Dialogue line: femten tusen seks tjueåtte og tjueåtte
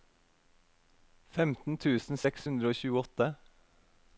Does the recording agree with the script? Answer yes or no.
no